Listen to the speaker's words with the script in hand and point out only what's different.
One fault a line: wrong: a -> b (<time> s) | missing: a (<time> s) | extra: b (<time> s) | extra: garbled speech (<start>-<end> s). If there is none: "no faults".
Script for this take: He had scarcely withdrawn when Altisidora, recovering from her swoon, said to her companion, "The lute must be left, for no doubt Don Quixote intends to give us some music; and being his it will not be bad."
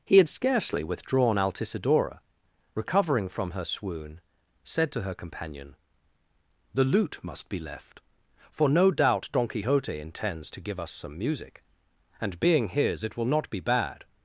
missing: when (1.4 s)